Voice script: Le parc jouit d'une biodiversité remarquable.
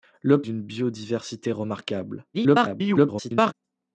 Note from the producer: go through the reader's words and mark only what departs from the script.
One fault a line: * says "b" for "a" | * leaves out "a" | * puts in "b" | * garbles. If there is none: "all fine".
* leaves out "parc jouit"
* garbles